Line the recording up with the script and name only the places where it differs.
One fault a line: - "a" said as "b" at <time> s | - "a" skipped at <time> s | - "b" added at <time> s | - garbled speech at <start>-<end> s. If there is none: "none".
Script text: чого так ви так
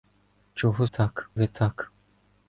none